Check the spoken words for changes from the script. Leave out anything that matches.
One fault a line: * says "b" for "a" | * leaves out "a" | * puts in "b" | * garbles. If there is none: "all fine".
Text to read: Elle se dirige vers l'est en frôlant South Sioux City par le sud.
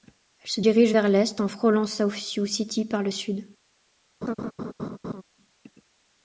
all fine